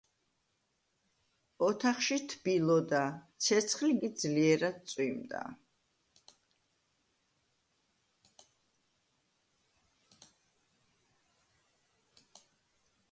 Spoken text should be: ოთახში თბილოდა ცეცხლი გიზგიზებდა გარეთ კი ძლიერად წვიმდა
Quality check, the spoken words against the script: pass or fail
fail